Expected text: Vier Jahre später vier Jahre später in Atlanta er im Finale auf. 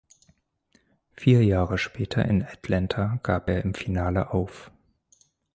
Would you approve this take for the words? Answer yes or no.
no